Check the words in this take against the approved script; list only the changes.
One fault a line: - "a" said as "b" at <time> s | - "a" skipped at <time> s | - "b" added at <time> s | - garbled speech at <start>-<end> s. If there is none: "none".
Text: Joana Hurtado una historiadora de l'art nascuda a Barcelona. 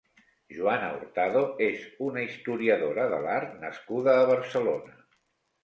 - "és" added at 1.6 s